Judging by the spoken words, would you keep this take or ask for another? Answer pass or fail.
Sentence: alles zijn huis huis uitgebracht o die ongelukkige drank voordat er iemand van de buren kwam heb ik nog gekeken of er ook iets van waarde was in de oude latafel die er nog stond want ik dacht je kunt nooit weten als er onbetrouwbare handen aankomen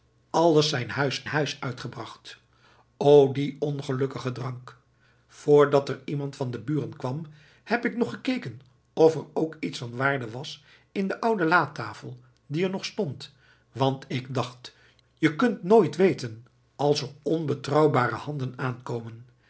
pass